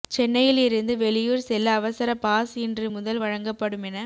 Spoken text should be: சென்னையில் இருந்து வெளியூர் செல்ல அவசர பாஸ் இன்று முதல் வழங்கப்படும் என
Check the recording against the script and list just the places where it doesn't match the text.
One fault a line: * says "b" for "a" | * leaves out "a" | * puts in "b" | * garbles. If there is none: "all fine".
all fine